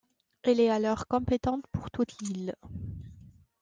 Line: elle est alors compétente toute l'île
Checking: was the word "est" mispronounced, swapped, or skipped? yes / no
no